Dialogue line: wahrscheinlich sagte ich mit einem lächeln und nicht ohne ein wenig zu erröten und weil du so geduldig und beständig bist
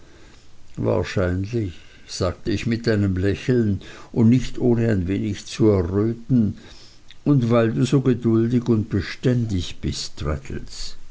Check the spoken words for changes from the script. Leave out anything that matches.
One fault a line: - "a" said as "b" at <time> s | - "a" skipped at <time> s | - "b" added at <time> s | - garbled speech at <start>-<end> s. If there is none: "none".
none